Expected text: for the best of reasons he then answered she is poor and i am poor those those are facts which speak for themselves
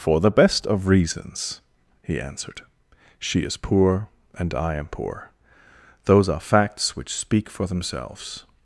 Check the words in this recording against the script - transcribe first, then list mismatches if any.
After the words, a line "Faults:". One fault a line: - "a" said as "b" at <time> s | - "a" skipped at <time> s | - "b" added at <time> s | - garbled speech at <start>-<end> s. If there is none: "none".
for the best of reasons he answered she is poor and i am poor those are facts which speak for themselves
Faults:
- "then" skipped at 2.2 s
- "those" skipped at 6.3 s